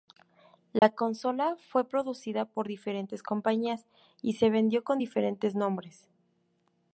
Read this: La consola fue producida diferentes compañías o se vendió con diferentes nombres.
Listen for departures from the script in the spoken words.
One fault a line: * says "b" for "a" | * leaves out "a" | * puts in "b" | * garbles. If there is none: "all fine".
* puts in "por"
* says "y" for "o"